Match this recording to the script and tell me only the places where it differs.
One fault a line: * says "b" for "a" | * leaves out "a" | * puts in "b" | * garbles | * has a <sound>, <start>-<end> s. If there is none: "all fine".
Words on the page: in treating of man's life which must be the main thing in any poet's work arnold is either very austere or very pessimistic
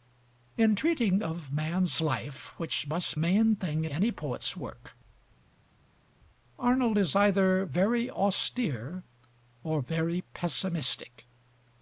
* leaves out "be the"
* leaves out "in"